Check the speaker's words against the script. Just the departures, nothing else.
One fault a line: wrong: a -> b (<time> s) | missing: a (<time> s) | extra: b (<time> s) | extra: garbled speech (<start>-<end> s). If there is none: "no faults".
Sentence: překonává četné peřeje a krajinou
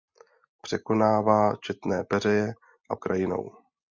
no faults